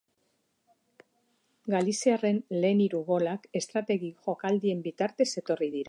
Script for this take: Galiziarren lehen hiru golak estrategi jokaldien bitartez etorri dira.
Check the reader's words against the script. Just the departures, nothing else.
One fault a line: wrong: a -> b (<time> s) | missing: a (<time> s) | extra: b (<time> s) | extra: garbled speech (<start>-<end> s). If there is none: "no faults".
no faults